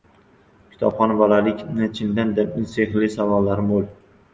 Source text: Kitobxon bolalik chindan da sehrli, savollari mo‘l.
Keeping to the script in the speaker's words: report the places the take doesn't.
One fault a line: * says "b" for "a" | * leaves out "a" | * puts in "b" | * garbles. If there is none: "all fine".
all fine